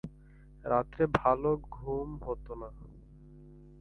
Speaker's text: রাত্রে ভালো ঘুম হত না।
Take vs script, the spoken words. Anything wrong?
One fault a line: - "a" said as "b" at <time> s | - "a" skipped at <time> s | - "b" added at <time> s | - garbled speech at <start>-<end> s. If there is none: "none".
none